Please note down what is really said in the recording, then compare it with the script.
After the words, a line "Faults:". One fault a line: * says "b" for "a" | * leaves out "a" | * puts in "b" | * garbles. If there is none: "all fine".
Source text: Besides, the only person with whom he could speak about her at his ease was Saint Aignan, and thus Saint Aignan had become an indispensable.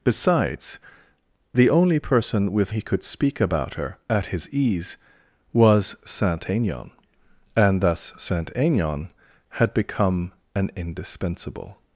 Besides, the only person with he could speak about her at his ease was Saint Aignan, and thus Saint Aignan had become an indispensable.
Faults:
* leaves out "whom"